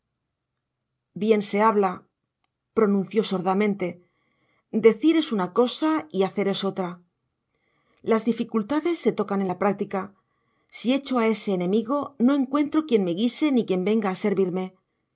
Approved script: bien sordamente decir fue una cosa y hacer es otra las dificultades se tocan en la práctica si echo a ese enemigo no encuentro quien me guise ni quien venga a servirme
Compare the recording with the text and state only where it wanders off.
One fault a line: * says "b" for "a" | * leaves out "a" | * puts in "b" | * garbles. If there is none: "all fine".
* puts in "se habla pronunció"
* says "es" for "fue"